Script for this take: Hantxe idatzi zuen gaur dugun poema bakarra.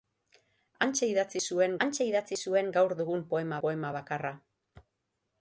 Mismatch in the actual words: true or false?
true